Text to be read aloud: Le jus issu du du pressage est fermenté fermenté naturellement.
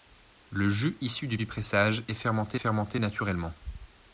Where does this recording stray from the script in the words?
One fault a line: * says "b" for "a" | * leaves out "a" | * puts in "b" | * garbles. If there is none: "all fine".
all fine